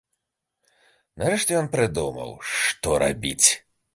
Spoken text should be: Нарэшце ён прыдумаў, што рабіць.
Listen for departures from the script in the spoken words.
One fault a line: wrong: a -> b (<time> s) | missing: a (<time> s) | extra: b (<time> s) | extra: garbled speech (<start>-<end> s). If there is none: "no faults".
no faults